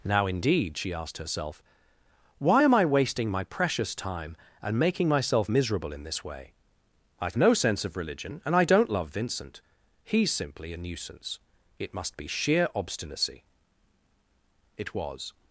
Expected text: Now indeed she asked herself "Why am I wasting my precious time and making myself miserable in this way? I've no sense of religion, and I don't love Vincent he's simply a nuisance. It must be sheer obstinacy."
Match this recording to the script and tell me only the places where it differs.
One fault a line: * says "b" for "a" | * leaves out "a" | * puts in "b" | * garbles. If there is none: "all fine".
* puts in "It was"